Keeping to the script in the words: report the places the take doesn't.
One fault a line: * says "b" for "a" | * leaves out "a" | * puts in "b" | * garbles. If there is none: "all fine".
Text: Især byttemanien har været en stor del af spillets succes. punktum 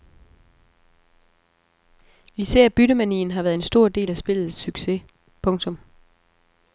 all fine